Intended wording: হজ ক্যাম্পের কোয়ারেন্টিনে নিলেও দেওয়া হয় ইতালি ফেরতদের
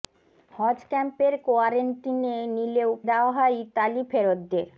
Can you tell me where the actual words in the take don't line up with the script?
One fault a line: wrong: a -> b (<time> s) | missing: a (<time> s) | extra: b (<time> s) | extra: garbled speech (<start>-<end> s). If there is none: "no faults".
no faults